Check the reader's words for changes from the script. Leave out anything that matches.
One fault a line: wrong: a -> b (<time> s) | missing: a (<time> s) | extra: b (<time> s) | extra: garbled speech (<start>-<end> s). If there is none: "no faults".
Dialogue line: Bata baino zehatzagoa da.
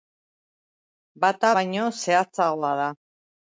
no faults